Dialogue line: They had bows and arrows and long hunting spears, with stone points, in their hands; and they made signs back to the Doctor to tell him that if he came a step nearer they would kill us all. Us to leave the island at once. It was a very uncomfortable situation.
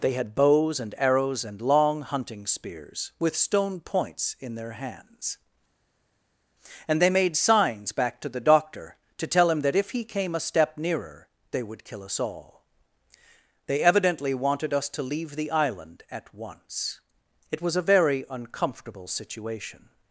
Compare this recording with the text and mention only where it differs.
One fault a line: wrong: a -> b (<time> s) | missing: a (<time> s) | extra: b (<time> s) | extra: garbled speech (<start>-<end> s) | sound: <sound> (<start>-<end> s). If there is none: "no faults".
extra: They evidently wanted (13.7 s)